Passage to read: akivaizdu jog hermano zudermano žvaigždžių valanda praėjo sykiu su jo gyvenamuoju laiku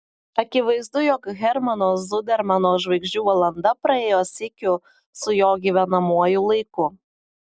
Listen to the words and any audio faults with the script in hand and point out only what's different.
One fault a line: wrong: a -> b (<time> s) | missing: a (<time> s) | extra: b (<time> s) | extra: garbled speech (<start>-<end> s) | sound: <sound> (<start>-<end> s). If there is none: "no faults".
no faults